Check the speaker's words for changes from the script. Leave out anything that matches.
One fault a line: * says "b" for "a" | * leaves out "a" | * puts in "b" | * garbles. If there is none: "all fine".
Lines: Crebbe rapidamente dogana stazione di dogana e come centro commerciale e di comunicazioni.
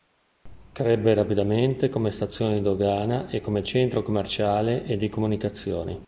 * says "come" for "dogana"